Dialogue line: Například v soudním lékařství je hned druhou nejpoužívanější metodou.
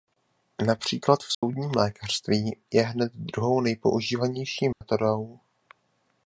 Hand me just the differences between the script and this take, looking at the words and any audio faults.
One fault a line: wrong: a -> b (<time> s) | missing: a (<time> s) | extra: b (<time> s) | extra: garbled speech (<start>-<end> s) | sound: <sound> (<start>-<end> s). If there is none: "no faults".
sound: dropout (1.3-1.4 s)
sound: dropout (4.7-4.8 s)